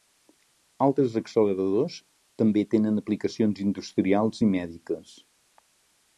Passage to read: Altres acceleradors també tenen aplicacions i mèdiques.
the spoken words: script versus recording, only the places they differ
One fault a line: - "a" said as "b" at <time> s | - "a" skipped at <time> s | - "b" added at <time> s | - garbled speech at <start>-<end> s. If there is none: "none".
- "industrials" added at 3.7 s